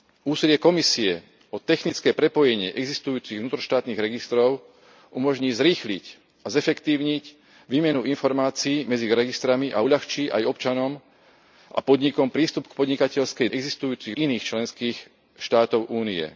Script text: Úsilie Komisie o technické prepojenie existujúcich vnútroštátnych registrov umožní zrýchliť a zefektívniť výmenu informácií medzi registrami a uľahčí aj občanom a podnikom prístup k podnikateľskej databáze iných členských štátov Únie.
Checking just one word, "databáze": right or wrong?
wrong